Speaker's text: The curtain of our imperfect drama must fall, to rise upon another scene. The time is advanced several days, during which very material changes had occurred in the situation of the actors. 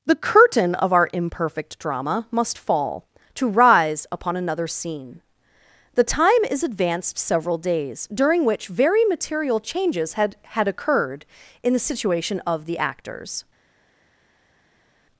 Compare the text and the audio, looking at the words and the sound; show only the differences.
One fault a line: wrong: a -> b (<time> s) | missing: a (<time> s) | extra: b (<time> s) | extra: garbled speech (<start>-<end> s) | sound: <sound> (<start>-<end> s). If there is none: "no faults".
extra: had (10.4 s)